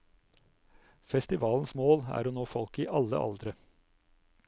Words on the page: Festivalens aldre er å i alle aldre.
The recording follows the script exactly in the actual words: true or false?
false